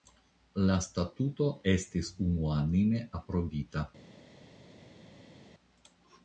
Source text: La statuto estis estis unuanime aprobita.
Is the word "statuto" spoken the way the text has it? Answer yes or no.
yes